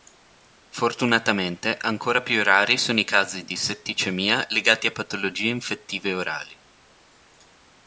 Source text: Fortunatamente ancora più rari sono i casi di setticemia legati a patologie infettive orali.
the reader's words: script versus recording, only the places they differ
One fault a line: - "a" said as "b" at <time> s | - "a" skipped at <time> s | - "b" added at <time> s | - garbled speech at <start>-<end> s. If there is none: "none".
none